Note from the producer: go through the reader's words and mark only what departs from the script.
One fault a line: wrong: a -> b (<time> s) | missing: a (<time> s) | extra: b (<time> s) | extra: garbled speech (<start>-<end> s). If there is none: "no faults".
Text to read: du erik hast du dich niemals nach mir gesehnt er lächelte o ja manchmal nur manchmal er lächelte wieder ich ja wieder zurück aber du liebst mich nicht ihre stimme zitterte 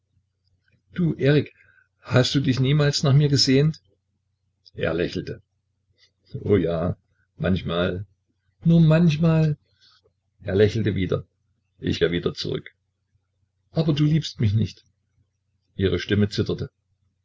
no faults